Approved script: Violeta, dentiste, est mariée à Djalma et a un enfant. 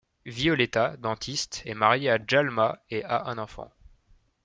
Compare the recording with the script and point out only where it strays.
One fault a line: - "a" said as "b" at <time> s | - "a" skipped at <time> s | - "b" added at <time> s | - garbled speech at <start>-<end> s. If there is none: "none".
none